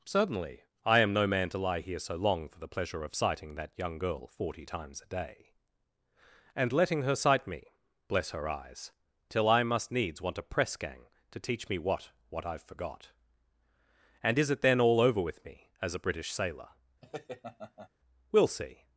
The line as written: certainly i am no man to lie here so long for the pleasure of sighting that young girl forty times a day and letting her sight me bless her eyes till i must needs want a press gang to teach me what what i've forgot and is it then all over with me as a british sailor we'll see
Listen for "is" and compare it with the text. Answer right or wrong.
right